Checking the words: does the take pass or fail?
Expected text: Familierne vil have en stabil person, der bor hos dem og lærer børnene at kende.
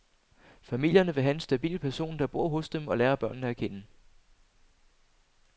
pass